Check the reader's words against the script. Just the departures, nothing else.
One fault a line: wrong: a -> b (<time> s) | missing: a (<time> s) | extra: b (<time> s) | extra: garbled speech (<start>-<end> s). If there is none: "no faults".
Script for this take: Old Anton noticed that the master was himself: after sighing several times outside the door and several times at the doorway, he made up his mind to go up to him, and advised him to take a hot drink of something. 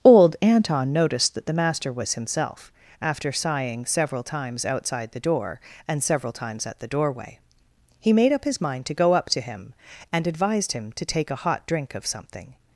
no faults